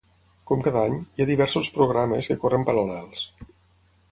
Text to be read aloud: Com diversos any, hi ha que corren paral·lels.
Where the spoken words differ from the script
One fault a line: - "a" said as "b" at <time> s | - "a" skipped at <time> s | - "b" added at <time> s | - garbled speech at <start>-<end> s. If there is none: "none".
- "diversos" said as "cada" at 0.7 s
- "diversos programes" added at 1.3 s